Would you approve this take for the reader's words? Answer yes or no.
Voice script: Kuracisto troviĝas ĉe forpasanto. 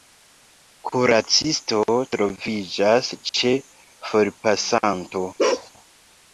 yes